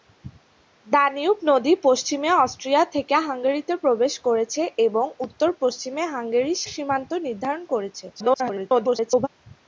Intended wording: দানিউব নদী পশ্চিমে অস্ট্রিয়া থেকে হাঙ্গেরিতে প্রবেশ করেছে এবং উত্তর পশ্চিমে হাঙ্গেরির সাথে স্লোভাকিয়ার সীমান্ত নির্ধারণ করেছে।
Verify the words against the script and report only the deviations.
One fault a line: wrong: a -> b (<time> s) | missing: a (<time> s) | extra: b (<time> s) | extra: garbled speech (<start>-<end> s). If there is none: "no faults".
missing: সাথে স্লোভাকিয়ার (6.6 s)
extra: garbled speech (8.1-9.3 s)